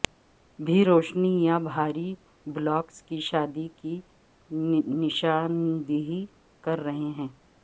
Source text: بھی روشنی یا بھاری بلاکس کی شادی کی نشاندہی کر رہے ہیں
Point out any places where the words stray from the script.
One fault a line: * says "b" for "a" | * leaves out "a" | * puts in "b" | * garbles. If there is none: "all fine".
all fine